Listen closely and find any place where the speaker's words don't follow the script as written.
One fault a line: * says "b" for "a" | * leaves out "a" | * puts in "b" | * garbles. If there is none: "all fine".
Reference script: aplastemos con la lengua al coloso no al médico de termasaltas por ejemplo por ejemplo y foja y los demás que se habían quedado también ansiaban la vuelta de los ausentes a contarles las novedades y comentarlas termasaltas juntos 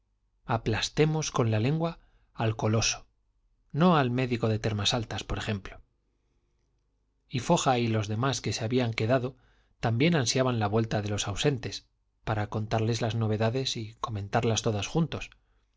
* leaves out "por ejemplo"
* says "para" for "a"
* says "todos" for "termasaltas"